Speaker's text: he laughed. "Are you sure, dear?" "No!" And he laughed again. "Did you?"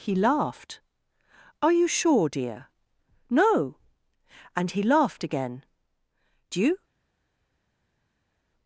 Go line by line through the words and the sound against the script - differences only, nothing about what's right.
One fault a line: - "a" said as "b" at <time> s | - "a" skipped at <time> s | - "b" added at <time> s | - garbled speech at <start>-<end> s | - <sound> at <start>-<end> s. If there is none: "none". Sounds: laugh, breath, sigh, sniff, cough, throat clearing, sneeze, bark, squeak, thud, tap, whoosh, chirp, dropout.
- "Did" skipped at 5.6 s